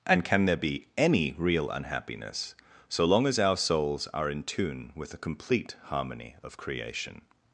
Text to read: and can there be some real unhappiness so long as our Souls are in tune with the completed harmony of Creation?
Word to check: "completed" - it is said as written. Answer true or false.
false